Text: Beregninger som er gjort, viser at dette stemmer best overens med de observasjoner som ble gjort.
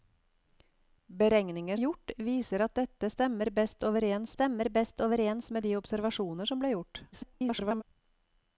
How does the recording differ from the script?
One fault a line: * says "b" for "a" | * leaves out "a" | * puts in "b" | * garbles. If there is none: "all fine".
* leaves out "som"
* puts in "stemmer best overens"
* garbles